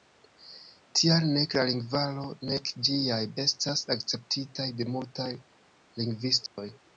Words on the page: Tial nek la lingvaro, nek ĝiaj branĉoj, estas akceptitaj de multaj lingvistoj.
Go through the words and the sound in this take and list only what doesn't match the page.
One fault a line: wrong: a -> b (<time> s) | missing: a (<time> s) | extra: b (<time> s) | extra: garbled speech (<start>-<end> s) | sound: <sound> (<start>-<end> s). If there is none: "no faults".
missing: branĉoj (3.2 s)
sound: dropout (6.5-6.6 s)